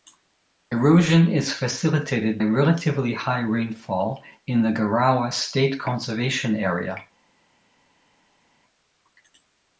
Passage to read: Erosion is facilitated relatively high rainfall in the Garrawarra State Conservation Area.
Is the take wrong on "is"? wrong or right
right